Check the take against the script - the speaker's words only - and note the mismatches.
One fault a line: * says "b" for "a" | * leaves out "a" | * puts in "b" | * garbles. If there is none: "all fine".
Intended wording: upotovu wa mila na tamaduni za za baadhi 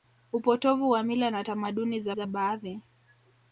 all fine